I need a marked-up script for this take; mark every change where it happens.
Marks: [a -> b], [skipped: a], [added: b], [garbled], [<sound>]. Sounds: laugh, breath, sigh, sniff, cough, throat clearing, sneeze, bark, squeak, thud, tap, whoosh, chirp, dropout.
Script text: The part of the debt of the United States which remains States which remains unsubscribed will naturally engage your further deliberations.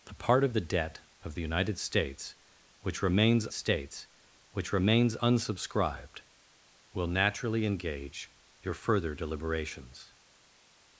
The part of the debt of the United States which remains States which remains unsubscribed will naturally engage your further deliberations.